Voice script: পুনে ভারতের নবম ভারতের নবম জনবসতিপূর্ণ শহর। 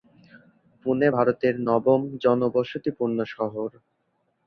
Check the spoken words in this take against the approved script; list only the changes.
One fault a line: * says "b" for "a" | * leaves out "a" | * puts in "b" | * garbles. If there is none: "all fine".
* leaves out "ভারতের নবম"